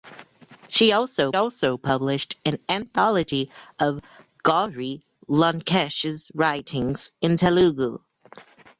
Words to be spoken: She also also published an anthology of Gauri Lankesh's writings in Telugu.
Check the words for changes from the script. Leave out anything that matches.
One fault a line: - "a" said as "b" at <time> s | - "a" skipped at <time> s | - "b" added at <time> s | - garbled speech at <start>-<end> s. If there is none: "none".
none